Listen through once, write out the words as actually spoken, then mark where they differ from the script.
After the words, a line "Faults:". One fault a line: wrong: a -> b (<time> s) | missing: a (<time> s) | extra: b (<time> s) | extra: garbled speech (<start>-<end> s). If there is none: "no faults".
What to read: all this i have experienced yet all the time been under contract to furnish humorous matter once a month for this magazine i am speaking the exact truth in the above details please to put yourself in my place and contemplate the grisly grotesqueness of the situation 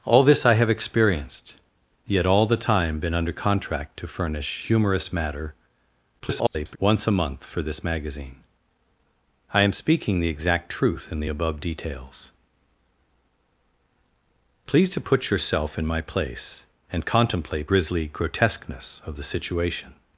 all this i have experienced yet all the time been under contract to furnish humorous matter [garbled] once a month for this magazine i am speaking the exact truth in the above details please to put yourself in my place and contemplate grisly grotesqueness of the situation
Faults:
extra: garbled speech (6.2-6.8 s)
missing: the (17.7 s)